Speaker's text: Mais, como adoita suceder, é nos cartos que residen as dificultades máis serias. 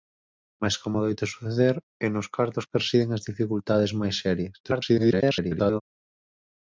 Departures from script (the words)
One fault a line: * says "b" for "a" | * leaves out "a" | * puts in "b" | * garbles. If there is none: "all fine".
* garbles